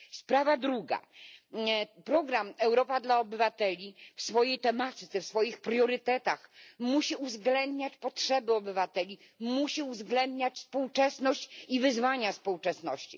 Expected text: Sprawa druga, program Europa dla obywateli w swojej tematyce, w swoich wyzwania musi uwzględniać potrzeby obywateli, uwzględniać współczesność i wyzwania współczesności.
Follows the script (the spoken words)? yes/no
no